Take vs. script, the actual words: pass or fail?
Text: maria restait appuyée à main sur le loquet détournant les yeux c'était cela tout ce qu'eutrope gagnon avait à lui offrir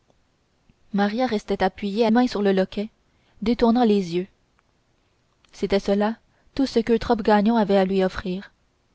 pass